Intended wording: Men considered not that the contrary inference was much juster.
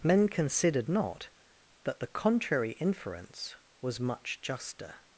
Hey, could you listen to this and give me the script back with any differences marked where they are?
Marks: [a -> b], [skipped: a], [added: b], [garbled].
Men considered not that the contrary inference was much juster.